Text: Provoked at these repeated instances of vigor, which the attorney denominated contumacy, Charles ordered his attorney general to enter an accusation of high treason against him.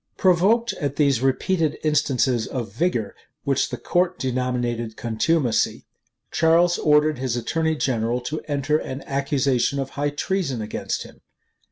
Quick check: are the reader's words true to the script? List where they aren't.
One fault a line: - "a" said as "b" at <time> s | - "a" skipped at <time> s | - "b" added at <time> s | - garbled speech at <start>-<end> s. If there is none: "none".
- "attorney" said as "court" at 3.8 s